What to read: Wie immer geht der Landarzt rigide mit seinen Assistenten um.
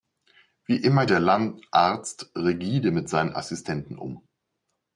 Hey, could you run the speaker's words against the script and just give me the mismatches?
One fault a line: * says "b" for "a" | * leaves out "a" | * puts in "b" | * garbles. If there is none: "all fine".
* leaves out "geht"